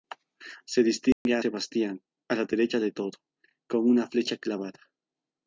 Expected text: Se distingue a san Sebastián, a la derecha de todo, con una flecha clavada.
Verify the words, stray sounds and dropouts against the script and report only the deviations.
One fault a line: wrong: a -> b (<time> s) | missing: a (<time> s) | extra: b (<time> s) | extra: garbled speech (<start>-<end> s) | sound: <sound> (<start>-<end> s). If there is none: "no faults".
sound: dropout (1.1-1.3 s)
missing: san (1.4 s)